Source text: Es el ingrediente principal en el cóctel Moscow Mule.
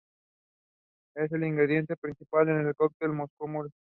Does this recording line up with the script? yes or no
yes